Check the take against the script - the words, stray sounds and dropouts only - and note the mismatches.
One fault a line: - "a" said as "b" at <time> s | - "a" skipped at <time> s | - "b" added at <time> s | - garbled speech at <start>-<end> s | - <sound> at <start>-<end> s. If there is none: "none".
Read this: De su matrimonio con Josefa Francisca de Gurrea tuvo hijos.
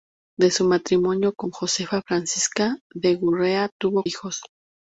none